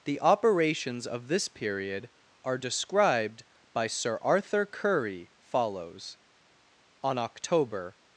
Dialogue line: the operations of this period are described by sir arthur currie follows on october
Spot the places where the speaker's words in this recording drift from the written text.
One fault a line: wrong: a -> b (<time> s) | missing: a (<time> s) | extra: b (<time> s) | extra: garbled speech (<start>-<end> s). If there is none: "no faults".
no faults